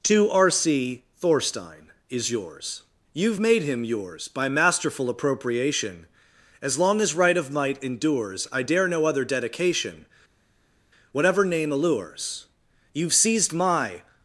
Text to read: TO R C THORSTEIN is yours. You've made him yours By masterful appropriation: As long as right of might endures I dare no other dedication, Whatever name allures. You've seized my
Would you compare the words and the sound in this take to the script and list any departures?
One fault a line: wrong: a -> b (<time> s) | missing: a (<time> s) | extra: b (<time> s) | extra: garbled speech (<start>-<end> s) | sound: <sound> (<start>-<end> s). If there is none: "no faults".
no faults